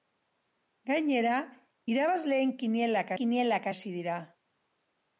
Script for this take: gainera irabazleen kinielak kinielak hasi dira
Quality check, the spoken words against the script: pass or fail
pass